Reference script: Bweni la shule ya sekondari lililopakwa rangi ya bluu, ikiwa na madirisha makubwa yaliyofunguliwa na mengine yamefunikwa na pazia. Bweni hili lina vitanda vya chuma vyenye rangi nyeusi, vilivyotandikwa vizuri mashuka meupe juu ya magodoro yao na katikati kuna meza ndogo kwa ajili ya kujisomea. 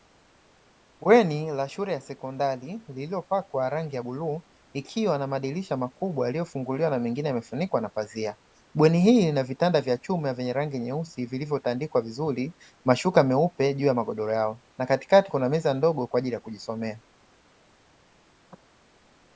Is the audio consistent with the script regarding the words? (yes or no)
yes